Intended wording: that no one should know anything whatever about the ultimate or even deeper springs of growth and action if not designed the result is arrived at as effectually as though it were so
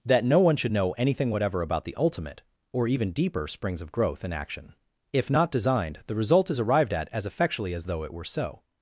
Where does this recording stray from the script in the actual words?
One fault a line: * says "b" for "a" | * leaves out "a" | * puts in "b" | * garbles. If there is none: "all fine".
all fine